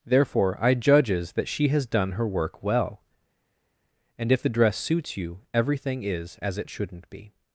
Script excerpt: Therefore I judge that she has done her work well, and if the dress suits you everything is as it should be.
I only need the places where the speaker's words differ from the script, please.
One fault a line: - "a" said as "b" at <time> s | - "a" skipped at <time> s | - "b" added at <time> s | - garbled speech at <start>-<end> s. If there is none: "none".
- "judge" said as "judges" at 0.7 s
- "should" said as "shouldn't" at 6.7 s